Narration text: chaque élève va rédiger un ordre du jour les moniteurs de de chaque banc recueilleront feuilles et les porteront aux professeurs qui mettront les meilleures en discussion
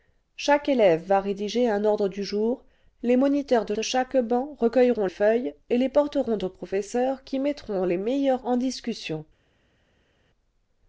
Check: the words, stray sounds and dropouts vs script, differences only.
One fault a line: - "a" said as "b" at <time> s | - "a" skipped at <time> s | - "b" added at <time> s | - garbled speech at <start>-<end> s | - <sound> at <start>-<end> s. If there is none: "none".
none